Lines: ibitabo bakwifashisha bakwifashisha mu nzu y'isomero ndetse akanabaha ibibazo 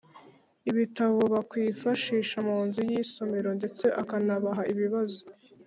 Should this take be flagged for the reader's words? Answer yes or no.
yes